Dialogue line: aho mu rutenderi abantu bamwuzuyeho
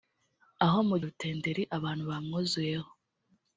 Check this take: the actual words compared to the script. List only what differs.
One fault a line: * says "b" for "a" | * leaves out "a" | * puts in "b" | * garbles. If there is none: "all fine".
all fine